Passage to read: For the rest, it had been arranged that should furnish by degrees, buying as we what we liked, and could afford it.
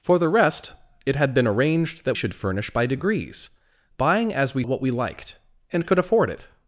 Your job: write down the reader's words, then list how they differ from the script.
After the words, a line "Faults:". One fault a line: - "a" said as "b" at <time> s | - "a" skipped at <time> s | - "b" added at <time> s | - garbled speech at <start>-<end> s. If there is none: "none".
For the rest, it had been arranged that should furnish by degrees, buying as we what we liked, and could afford it.
Faults:
none